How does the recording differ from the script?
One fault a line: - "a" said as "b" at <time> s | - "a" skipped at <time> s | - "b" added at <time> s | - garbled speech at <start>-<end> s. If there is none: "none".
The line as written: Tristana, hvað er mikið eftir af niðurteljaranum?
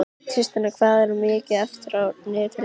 none